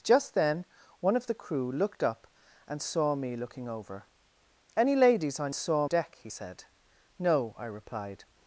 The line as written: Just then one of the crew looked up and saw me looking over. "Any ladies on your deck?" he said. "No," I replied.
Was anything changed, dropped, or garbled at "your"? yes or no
yes